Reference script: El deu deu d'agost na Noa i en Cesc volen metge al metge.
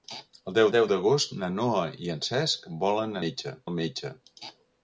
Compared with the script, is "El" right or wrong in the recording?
right